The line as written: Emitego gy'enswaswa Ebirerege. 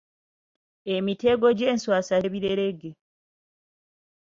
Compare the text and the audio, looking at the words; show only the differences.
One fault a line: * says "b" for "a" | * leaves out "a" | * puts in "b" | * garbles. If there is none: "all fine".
all fine